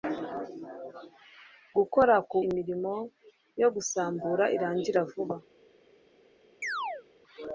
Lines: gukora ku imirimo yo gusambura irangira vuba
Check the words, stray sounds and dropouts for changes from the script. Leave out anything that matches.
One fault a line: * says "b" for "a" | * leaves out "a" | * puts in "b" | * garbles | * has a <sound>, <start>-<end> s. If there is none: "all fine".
* has a chirp, 6.6-7.1 s